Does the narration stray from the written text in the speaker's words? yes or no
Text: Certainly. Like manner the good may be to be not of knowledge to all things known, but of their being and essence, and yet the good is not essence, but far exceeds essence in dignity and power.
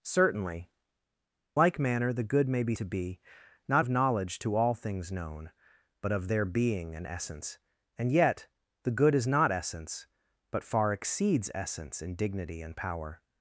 no